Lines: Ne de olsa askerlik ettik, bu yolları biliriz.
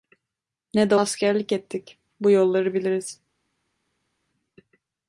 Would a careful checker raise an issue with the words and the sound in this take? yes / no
yes